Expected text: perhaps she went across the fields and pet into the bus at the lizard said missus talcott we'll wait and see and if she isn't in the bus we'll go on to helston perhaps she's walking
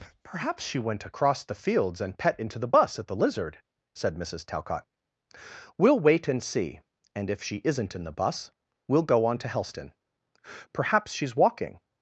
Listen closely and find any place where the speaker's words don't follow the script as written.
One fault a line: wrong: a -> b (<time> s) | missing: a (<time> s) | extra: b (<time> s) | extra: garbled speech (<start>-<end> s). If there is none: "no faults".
no faults